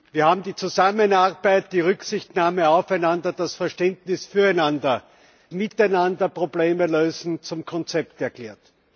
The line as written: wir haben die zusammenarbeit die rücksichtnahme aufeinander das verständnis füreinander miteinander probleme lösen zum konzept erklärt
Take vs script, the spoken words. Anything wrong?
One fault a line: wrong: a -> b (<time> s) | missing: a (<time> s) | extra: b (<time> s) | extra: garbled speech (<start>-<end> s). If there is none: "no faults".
no faults